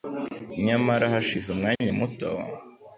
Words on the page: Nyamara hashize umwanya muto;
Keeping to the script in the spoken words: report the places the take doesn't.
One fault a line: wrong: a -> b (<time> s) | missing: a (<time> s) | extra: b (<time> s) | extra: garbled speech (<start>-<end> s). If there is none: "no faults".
no faults